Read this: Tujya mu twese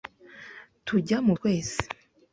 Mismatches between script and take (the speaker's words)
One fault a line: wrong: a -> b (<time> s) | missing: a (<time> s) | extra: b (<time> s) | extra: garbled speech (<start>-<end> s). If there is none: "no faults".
no faults